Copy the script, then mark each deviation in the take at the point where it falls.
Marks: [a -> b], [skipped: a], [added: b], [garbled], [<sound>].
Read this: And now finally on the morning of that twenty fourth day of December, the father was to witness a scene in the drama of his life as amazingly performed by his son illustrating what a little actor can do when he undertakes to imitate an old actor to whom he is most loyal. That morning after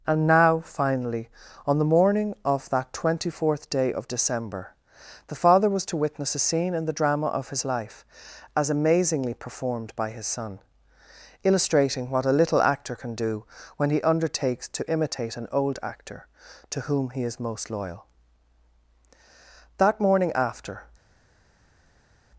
And now finally on the morning of that twenty fourth day of December, the father was to witness a scene in the drama of his life as amazingly performed by his son illustrating what a little actor can do when he undertakes to imitate an old actor to whom he is most loyal. That morning after